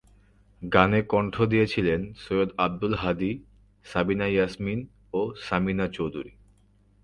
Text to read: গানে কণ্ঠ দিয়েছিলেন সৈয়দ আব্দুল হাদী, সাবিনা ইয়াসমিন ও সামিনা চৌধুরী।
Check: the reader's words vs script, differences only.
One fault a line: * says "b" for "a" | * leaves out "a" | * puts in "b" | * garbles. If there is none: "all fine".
all fine